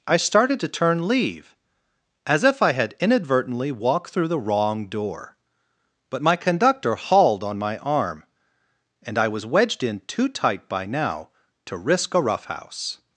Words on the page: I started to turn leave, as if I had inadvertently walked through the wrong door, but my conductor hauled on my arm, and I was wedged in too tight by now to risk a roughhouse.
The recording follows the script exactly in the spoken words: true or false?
true